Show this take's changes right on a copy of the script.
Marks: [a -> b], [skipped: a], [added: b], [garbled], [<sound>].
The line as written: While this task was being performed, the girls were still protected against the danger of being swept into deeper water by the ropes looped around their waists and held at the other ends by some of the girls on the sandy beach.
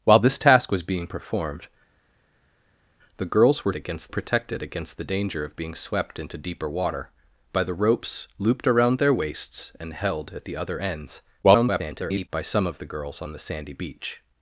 While this task was being performed, the girls were [still -> against] protected against the danger of being swept into deeper water by the ropes looped around their waists and held at the other ends [garbled] by some of the girls on the sandy beach.